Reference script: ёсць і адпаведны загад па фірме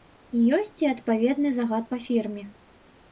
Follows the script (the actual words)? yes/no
yes